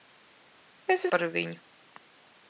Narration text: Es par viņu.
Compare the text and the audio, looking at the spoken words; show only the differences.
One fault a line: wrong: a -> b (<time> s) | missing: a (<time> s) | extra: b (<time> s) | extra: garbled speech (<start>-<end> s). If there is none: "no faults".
no faults